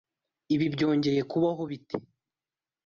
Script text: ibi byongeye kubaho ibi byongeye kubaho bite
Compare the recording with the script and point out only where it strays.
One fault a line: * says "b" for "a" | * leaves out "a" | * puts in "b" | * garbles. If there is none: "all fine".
* leaves out "ibi byongeye kubaho"